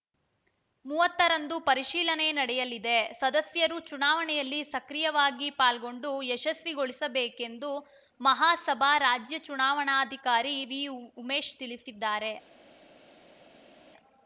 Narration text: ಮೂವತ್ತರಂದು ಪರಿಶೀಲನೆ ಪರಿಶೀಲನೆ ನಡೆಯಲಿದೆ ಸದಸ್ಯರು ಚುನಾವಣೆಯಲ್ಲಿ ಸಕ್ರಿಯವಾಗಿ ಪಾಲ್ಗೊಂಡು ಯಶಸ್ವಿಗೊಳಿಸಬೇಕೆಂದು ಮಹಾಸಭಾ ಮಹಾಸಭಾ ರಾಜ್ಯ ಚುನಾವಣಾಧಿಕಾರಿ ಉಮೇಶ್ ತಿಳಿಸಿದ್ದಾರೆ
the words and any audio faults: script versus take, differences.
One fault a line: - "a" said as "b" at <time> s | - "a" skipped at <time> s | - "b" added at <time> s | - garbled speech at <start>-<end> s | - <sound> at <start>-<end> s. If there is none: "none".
- "ಪರಿಶೀಲನೆ" skipped at 2.3 s
- "ಮಹಾಸಭಾ" skipped at 8.9 s
- "ವಿ" added at 10.6 s